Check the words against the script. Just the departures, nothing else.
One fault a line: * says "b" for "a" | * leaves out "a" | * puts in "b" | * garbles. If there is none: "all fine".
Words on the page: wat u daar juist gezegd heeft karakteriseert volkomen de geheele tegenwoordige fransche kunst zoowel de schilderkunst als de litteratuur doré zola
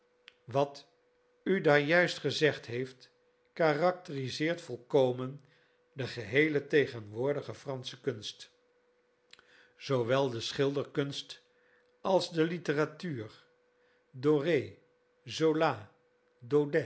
all fine